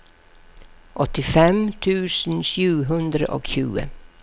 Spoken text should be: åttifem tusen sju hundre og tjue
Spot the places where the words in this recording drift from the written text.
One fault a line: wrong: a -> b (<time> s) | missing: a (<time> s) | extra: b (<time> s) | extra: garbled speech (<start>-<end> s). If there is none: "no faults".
no faults